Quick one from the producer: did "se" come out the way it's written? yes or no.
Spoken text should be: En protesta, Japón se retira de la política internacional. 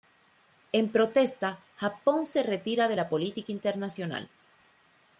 yes